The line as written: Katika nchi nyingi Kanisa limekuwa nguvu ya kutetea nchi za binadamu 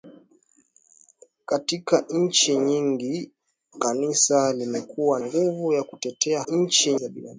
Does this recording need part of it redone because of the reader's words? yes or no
no